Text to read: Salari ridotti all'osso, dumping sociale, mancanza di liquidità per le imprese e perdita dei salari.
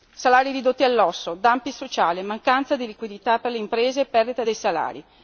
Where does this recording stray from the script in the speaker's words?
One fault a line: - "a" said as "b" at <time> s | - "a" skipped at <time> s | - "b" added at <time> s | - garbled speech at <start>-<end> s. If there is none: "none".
none